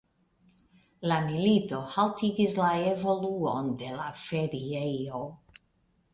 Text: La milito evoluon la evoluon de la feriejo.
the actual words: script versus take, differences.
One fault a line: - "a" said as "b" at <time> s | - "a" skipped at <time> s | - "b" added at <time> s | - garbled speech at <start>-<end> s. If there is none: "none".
- "evoluon" said as "haltigis" at 2.0 s